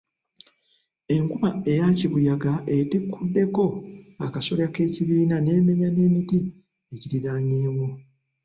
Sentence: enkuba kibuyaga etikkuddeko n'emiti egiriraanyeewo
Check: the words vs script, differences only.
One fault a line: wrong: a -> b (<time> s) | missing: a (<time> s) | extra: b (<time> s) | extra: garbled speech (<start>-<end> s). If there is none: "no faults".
extra: eya (1.7 s)
extra: akasolya k'ekibiina n'emenya (4.3 s)